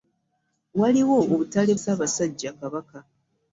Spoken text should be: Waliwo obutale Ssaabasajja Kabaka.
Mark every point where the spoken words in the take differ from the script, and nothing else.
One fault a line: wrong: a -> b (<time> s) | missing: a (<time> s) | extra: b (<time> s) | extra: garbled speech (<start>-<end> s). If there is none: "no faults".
no faults